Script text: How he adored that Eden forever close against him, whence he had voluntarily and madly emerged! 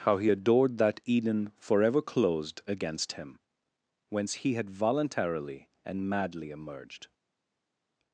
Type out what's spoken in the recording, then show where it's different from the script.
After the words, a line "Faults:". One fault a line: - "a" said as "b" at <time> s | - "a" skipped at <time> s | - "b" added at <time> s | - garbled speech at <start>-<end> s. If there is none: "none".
How he adored that Eden forever closed against him, whence he had voluntarily and madly emerged!
Faults:
- "close" said as "closed" at 2.0 s